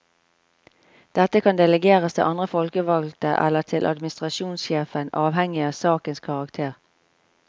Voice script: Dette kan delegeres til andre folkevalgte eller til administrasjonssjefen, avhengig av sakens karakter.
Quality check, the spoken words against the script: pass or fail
pass